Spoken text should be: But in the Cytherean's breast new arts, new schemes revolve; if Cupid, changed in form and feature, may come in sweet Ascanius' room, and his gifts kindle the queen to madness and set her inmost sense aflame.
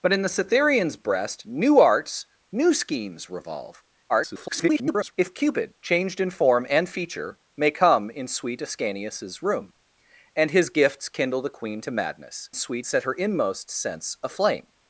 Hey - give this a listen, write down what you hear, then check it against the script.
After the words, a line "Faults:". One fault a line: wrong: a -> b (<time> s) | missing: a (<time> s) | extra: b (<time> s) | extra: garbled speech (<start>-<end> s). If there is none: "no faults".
But in the Cytherean's breast new arts, new schemes revolve; [garbled] if Cupid, changed in form and feature, may come in sweet Ascanius' room, and his gifts kindle the queen to madness sweet set her inmost sense aflame.
Faults:
extra: garbled speech (4.1-5.1 s)
wrong: and -> sweet (12.5 s)